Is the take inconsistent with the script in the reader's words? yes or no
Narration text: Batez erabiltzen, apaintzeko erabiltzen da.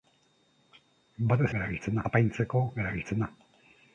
no